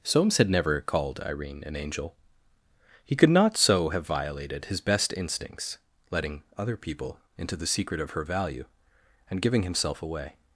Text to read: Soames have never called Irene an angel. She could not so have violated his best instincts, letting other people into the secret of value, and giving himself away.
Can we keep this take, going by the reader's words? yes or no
no